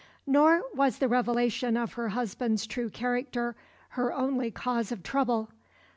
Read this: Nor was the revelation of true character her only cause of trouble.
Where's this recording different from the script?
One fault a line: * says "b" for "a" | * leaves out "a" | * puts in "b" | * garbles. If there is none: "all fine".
* puts in "her husband's"